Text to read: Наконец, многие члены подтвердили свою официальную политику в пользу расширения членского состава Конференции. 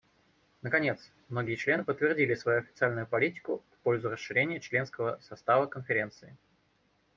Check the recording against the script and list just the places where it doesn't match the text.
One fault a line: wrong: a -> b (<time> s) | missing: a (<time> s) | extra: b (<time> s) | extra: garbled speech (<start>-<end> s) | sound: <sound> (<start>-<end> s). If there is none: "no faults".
no faults